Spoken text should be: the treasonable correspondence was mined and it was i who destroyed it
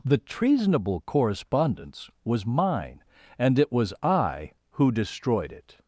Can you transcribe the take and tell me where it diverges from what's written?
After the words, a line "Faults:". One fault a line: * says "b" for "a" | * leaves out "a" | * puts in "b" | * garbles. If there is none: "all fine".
the treasonable correspondence was mine and it was i who destroyed it
Faults:
* says "mine" for "mined"